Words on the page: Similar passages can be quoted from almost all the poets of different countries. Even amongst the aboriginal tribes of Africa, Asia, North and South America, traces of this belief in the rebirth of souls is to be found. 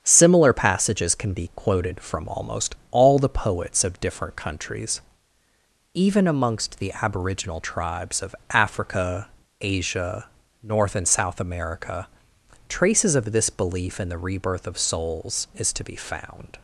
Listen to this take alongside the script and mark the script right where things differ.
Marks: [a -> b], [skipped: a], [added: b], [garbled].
Similar passages can be quoted from almost all the poets of different countries. Even amongst the aboriginal tribes of Africa, Asia, North and South America, traces of this belief in the rebirth of souls is to be found.